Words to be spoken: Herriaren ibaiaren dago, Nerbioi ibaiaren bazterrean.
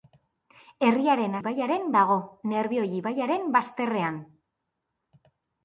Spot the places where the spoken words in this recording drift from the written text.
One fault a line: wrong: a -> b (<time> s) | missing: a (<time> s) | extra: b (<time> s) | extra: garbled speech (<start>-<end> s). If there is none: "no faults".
no faults